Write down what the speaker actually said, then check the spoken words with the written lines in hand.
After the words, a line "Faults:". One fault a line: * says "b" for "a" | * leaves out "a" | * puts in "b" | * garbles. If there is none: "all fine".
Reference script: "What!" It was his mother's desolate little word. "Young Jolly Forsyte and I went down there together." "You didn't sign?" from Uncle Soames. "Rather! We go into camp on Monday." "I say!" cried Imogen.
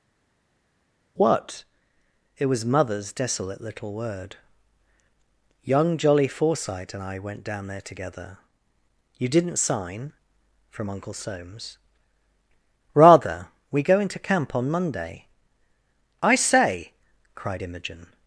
"What!" It was mother's desolate little word. "Young Jolly Forsyte and I went down there together." "You didn't sign?" from Uncle Soames. "Rather! We go into camp on Monday." "I say!" cried Imogen.
Faults:
* leaves out "his"